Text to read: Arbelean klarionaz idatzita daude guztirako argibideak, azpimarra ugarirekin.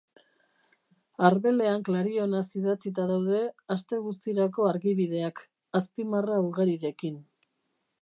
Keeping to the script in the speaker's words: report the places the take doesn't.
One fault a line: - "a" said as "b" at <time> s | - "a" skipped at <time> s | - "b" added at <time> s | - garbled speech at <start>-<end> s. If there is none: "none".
- "aste" added at 3.8 s